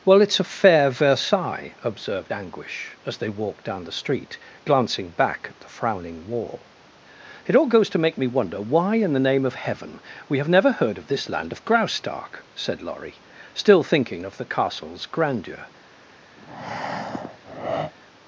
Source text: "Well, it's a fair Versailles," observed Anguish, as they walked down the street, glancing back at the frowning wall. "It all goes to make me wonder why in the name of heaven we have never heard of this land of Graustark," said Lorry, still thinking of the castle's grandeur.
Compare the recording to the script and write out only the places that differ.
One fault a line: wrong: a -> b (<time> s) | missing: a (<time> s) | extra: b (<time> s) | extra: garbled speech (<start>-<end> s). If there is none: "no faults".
no faults